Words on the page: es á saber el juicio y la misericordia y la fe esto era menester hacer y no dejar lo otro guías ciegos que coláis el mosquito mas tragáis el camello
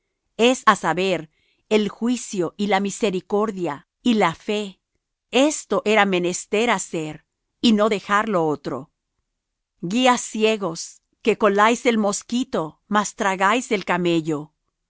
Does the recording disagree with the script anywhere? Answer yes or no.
no